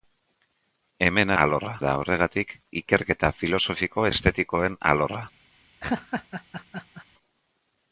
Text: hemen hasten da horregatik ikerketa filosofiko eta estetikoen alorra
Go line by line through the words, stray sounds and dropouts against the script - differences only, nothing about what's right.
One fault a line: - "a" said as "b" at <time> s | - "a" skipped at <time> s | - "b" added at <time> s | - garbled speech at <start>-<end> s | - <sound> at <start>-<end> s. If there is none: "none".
- "hasten" said as "alorra" at 1.4 s
- "eta" skipped at 4.1 s
- laugh at 5.8-7.1 s